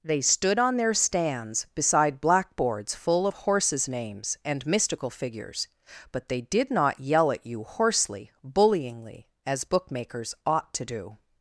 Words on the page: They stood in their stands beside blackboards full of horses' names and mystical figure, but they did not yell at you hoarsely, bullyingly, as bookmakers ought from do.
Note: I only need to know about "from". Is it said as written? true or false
false